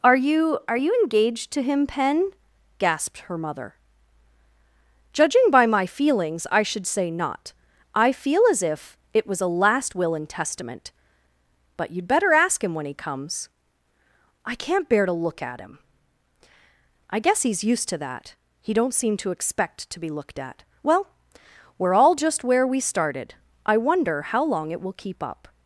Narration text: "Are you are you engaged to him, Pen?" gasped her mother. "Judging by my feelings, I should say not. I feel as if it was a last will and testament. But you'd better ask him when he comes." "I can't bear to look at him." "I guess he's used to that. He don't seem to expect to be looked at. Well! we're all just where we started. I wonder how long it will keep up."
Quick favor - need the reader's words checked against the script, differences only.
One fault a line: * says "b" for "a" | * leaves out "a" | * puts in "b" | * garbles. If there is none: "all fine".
all fine